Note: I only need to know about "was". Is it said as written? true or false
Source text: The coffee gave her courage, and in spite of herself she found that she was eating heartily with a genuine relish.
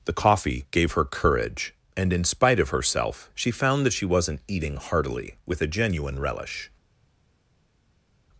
false